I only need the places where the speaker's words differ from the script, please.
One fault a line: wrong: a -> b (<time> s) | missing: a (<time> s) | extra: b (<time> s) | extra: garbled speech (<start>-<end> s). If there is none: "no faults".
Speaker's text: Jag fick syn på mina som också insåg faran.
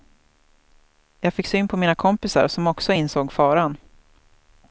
extra: kompisar (2.0 s)